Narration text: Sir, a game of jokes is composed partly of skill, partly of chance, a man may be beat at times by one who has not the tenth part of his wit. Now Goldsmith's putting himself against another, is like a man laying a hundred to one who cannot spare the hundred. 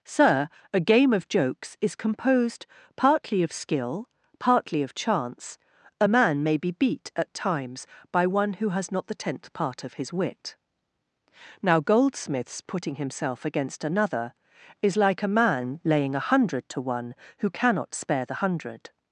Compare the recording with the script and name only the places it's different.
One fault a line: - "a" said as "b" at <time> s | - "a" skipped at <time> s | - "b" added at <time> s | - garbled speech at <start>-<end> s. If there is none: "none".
none